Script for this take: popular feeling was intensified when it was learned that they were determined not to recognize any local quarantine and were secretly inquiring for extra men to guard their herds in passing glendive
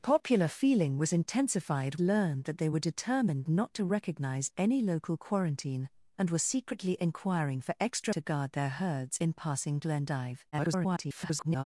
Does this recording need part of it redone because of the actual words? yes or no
yes